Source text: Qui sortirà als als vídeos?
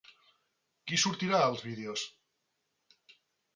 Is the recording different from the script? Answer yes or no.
yes